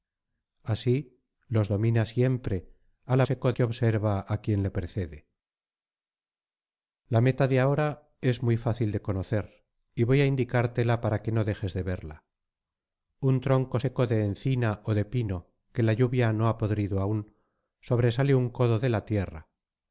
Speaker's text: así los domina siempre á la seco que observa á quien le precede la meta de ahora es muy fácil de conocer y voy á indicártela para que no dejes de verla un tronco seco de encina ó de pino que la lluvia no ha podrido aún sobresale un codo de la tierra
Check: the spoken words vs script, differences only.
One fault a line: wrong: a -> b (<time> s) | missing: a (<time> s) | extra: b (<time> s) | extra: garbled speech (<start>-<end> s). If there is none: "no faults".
no faults